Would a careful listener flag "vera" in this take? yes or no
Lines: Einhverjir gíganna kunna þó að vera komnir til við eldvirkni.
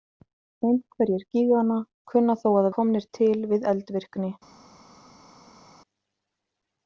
yes